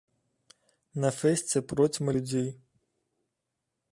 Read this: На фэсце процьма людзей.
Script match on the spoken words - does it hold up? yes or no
yes